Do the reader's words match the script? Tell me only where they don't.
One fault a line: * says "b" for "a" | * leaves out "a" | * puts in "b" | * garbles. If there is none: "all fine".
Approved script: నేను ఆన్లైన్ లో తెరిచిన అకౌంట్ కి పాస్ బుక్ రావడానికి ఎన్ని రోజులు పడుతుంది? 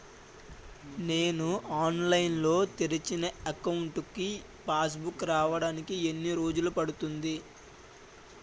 all fine